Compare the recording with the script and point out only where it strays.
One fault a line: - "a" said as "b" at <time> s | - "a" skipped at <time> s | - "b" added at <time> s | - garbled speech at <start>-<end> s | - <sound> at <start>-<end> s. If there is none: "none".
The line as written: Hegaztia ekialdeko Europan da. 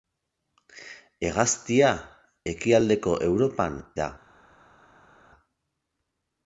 none